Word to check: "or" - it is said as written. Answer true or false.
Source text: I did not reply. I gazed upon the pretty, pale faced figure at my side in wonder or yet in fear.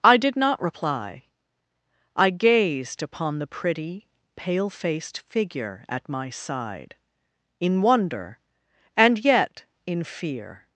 false